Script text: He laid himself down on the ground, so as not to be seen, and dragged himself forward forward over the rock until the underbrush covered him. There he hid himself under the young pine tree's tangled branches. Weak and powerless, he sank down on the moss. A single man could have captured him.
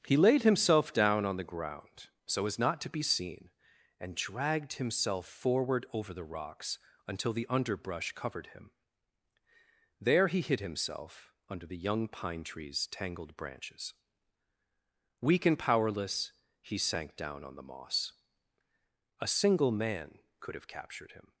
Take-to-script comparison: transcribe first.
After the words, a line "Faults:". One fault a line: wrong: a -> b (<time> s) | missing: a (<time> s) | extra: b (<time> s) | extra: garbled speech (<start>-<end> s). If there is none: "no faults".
He laid himself down on the ground, so as not to be seen, and dragged himself forward over the rocks until the underbrush covered him. There he hid himself under the young pine tree's tangled branches. Weak and powerless, he sank down on the moss. A single man could have captured him.
Faults:
missing: forward (5.8 s)
wrong: rock -> rocks (6.2 s)